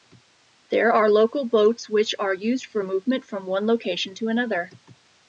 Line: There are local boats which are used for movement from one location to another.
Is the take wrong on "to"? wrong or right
right